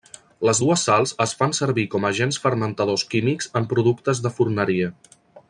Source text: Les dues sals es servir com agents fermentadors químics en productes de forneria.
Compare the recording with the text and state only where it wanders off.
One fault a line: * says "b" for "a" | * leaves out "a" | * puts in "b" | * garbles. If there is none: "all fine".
* puts in "fan"